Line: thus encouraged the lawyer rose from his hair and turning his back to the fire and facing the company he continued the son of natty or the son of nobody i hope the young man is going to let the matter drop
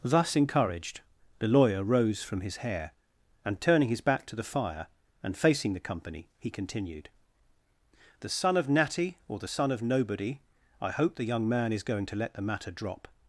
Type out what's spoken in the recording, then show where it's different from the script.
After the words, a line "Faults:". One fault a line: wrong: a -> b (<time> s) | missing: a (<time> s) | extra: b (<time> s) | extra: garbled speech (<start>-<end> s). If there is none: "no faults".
thus encouraged the lawyer rose from his hair and turning his back to the fire and facing the company he continued the son of natty or the son of nobody i hope the young man is going to let the matter drop
Faults:
no faults